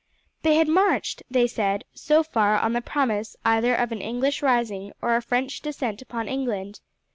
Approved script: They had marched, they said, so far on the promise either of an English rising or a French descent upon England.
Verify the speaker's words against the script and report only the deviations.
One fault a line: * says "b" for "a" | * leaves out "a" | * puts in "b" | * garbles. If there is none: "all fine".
all fine